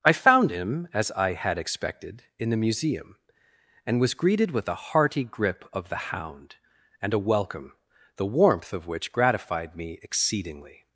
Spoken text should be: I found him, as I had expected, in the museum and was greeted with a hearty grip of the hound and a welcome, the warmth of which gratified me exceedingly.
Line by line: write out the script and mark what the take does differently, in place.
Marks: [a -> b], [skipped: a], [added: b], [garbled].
I found him, as I had expected, in the museum and was greeted with a hearty grip of the hound and a welcome, the warmth of which gratified me exceedingly.